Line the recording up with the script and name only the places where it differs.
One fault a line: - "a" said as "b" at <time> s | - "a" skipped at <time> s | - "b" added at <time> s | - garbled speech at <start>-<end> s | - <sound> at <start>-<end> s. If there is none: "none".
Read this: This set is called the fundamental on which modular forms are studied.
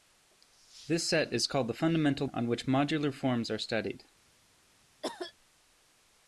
- cough at 5.0-5.3 s